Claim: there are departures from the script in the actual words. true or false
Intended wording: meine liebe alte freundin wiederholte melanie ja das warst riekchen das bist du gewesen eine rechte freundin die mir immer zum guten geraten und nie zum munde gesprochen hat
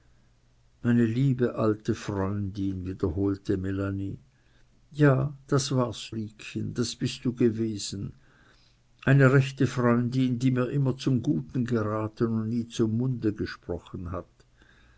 false